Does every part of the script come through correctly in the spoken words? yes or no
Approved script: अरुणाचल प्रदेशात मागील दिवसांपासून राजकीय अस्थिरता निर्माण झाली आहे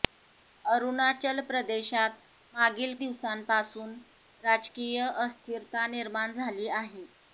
yes